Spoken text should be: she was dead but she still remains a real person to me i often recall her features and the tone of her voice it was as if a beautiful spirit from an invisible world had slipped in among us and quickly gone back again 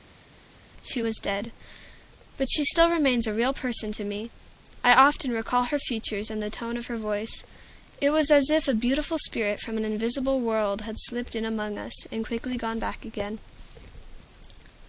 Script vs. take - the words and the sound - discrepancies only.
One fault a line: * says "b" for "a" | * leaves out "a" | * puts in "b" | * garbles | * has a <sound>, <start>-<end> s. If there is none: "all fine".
all fine